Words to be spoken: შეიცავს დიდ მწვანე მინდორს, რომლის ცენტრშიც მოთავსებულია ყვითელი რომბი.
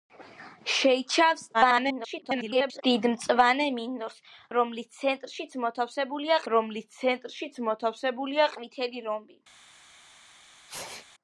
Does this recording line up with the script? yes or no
no